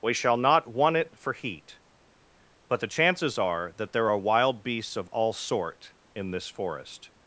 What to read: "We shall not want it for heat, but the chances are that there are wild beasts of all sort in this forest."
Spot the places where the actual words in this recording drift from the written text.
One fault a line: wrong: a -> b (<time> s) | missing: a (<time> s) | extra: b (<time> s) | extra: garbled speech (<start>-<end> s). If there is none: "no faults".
no faults